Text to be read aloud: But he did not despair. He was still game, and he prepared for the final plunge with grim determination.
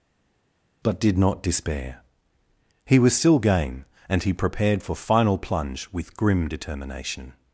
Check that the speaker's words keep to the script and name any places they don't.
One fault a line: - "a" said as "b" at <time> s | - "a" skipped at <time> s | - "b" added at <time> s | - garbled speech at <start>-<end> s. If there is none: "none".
- "he" skipped at 1.0 s
- "the" skipped at 5.0 s